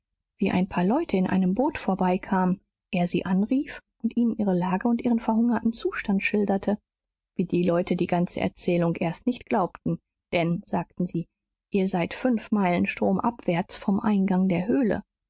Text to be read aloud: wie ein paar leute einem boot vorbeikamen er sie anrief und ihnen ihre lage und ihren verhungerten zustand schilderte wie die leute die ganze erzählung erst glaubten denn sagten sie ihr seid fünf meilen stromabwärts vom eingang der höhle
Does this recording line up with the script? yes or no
no